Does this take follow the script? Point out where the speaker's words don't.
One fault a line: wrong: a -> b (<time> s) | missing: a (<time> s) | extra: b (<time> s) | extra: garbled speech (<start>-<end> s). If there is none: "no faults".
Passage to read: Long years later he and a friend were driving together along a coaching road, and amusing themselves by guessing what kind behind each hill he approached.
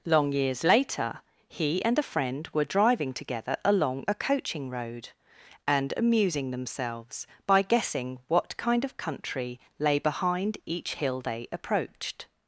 extra: of country lay (8.8 s)
wrong: he -> they (11.2 s)